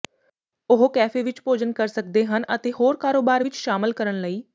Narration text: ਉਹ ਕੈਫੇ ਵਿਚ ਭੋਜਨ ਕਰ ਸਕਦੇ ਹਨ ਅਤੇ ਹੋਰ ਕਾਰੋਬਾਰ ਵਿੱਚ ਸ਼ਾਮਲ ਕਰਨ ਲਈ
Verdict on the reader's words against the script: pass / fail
pass